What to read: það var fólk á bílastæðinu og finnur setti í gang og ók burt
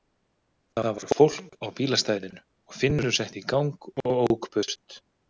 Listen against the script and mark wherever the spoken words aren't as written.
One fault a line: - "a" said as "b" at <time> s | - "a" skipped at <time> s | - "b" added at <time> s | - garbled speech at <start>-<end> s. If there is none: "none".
none